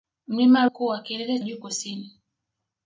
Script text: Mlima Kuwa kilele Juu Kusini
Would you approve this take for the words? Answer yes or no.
yes